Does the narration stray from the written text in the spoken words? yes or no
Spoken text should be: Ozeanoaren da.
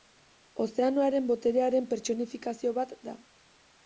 yes